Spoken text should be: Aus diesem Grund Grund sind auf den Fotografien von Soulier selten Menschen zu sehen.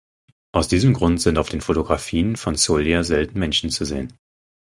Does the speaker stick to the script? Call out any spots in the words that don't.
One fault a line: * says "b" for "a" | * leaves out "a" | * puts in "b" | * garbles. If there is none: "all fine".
* leaves out "Grund"